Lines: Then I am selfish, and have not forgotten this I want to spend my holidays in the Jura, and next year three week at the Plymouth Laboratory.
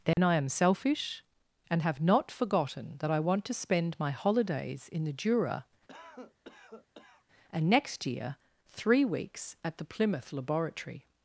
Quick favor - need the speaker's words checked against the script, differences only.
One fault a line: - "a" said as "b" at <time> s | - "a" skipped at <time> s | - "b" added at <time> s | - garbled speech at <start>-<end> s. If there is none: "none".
- "this" said as "that" at 3.0 s
- "week" said as "weeks" at 9.0 s